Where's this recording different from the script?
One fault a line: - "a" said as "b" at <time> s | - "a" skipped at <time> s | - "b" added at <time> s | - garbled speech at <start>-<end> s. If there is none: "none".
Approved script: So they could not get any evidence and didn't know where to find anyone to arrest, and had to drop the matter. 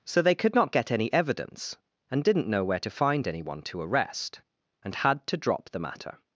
none